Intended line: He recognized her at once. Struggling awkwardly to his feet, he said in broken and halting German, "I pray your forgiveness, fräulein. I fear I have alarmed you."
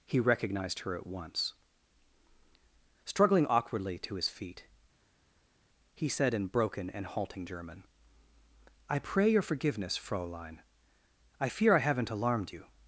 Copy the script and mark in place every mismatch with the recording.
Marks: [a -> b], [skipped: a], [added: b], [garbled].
He recognized her at once. Struggling awkwardly to his feet, he said in broken and halting German, "I pray your forgiveness, fräulein. I fear I [have -> haven't] alarmed you."